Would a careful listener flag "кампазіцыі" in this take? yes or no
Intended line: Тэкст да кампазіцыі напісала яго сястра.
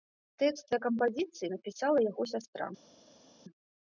no